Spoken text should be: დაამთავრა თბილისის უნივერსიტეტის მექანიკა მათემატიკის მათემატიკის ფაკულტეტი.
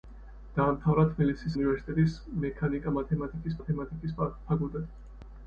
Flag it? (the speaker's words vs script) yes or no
no